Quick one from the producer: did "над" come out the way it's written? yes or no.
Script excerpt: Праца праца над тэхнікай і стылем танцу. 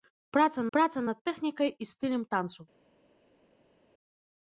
yes